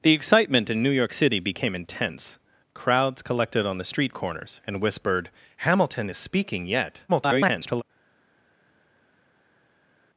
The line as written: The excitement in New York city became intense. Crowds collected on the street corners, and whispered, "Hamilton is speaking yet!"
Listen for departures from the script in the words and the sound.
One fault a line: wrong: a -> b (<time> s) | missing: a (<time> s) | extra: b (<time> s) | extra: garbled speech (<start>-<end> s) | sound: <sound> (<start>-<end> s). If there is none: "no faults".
extra: garbled speech (7.1-7.8 s)